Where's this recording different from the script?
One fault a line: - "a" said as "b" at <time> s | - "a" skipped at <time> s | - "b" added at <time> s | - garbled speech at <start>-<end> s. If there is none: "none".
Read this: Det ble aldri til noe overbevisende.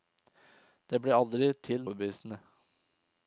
- "noe" skipped at 1.9 s